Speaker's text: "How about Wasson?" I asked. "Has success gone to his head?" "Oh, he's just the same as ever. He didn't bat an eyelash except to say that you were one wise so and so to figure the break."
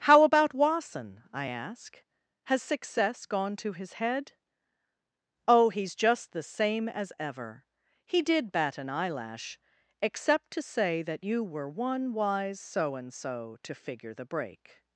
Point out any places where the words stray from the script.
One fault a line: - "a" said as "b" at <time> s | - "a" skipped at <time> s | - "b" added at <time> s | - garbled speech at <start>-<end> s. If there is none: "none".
- "asked" said as "ask" at 1.4 s
- "didn't" said as "did" at 8.2 s